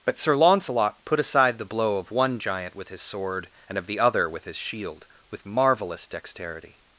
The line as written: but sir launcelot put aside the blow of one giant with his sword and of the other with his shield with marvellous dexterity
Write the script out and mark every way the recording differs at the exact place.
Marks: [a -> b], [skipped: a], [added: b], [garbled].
but sir launcelot put aside the blow of one giant with his sword and of the other with his shield with marvellous dexterity